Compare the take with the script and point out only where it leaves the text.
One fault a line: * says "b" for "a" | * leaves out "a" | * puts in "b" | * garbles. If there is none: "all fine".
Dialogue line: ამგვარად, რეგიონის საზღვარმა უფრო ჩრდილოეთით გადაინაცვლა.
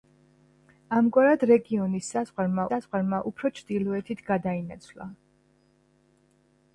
* puts in "საზღვარმა"